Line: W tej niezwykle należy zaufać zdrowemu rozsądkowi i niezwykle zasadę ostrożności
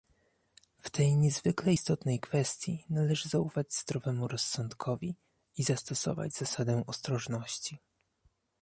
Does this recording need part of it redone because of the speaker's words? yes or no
yes